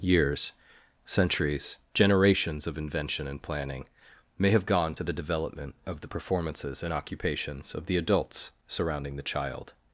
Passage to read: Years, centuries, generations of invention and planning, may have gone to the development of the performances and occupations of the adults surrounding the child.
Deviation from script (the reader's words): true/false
false